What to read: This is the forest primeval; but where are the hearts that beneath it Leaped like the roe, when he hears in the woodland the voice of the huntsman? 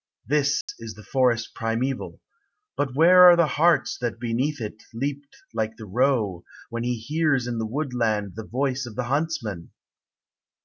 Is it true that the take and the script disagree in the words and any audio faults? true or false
true